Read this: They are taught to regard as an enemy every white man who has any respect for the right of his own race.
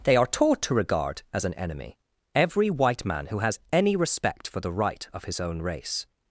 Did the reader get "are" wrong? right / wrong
right